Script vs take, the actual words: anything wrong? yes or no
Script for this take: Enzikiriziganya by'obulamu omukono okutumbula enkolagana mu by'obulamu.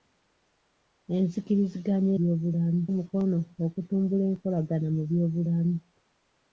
no